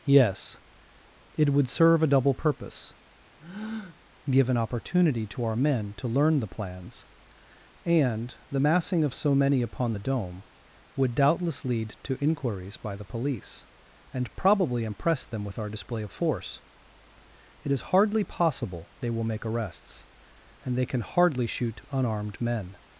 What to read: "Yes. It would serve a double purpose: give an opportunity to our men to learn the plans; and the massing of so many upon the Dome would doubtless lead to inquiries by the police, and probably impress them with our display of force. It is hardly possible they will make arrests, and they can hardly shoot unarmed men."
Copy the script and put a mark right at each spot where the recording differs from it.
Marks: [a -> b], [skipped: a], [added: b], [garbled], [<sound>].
"Yes. It would serve a double purpose: [breath] give an opportunity to our men to learn the plans; and the massing of so many upon the Dome would doubtless lead to inquiries by the police, and probably impress them with our display of force. It is hardly possible they will make arrests, and they can hardly shoot unarmed men."